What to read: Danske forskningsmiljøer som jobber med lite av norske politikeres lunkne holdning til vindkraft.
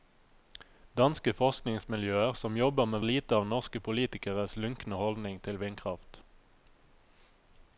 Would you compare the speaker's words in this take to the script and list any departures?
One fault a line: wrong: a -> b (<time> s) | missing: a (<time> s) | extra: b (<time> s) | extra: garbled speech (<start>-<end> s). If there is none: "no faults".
no faults